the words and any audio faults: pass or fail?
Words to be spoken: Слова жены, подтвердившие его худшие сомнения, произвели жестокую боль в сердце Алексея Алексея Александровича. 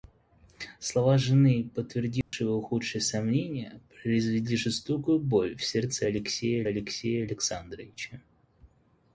fail